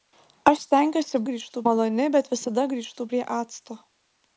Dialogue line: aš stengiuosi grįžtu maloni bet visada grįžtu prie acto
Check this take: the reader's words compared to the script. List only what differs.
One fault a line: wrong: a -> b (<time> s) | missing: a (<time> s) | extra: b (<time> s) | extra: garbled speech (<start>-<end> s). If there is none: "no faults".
no faults